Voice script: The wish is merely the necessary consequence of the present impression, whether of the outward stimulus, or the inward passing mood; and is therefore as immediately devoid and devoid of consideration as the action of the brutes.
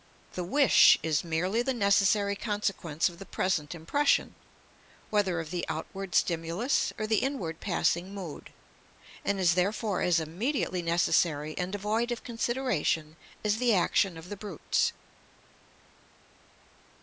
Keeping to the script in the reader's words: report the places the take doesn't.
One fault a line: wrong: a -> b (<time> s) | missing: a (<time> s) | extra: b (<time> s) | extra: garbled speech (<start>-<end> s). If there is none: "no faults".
wrong: devoid -> necessary (10.8 s)